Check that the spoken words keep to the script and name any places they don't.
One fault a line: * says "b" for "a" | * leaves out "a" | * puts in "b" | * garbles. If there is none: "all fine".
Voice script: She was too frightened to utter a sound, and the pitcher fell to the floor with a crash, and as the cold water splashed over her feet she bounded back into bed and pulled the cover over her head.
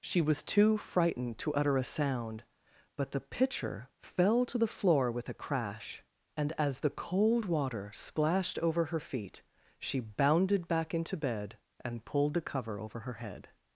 * says "but" for "and"